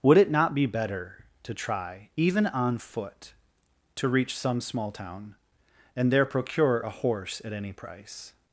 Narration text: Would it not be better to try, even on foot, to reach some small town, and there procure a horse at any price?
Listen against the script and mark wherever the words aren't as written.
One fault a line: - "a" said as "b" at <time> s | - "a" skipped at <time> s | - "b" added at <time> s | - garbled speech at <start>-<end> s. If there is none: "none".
none